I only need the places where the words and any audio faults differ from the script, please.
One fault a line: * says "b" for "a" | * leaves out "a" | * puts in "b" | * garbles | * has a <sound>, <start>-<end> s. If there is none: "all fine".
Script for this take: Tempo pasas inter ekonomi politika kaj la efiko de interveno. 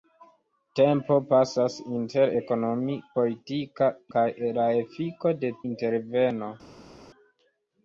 all fine